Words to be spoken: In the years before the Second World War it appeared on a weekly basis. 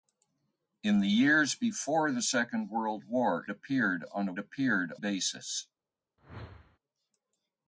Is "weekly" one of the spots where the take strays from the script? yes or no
yes